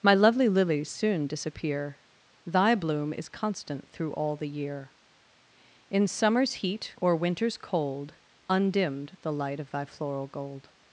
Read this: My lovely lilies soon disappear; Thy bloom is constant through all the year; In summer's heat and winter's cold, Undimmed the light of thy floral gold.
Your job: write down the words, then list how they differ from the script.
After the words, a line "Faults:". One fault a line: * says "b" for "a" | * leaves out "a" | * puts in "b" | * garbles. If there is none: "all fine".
My lovely lilies soon disappear; Thy bloom is constant through all the year; In summer's heat or winter's cold, Undimmed the light of thy floral gold.
Faults:
* says "or" for "and"